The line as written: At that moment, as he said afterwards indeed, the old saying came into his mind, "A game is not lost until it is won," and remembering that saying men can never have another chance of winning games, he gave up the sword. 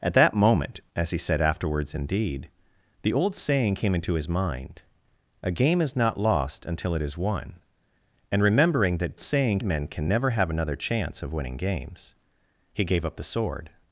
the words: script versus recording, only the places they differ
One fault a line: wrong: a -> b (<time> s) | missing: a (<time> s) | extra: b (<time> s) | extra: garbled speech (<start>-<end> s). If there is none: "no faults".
no faults